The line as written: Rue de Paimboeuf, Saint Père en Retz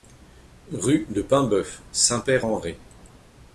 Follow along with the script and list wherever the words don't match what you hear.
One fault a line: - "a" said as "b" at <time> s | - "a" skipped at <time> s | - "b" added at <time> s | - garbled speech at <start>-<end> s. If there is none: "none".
none